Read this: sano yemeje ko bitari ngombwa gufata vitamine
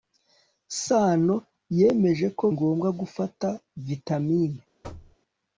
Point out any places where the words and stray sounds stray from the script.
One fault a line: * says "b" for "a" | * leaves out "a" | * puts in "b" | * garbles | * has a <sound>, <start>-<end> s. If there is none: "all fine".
* leaves out "bitari"
* has a thud, 4.8-5.2 s